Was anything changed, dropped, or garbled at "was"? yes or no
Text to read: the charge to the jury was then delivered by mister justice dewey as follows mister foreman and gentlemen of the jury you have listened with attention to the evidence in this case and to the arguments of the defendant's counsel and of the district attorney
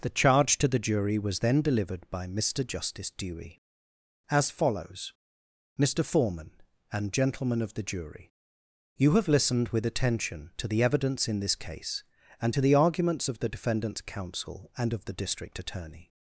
no